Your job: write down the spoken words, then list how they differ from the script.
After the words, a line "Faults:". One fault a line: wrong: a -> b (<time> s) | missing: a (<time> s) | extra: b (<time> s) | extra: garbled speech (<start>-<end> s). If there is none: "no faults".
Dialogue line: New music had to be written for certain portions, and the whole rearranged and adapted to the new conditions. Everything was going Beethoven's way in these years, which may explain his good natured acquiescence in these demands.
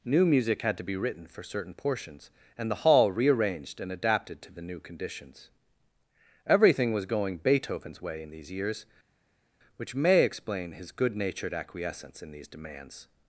New music had to be written for certain portions, and the hall rearranged and adapted to the new conditions. Everything was going Beethoven's way in these years, which may explain his good natured acquiescence in these demands.
Faults:
wrong: whole -> hall (2.8 s)